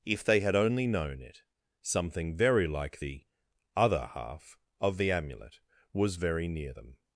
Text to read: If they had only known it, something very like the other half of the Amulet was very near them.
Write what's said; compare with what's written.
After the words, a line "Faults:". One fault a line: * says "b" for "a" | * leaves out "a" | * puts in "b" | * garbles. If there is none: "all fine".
If they had only known it, something very like the other half of the Amulet was very near them.
Faults:
all fine